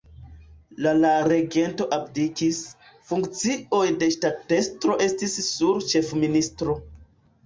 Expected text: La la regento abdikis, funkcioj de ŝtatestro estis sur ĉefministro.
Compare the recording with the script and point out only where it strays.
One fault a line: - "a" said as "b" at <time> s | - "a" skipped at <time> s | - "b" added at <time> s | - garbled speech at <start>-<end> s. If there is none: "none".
none